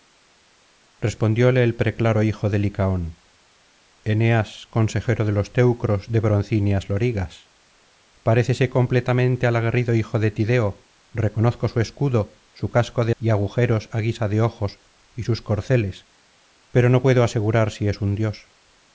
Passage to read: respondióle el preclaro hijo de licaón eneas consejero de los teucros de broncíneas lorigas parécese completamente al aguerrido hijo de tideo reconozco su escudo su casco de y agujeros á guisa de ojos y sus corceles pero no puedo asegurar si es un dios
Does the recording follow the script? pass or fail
pass